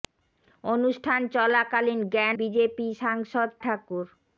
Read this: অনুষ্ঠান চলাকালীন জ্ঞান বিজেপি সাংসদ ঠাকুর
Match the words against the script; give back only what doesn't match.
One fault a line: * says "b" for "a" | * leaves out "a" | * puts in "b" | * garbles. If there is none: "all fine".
all fine